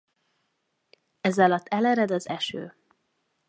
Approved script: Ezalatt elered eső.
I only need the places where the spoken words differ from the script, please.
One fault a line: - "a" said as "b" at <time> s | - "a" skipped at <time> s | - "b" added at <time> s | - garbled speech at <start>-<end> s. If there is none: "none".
- "az" added at 2.1 s